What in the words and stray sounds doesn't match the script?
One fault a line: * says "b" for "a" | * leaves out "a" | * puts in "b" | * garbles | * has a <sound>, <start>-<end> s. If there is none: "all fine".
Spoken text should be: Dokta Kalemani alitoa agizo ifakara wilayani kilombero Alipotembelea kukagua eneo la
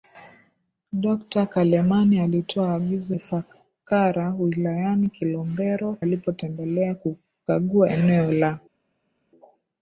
all fine